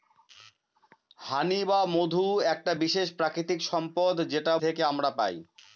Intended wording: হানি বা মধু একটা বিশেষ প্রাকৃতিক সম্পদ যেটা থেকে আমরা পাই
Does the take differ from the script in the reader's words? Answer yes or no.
no